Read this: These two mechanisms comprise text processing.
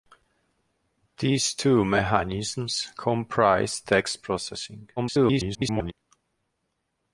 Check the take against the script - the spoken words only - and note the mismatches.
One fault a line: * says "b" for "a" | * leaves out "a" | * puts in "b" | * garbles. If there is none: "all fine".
* garbles